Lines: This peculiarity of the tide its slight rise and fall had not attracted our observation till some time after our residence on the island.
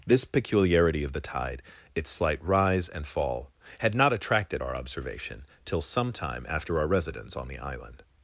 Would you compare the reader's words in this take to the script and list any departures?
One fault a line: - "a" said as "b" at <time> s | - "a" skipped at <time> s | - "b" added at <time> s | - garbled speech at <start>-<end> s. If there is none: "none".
none